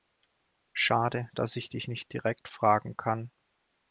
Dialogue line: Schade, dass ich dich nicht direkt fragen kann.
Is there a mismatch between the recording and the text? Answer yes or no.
no